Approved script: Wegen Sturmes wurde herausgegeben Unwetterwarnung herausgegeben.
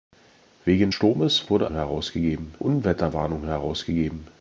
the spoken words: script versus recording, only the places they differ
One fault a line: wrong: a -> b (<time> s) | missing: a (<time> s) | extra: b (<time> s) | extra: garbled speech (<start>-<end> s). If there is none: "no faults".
no faults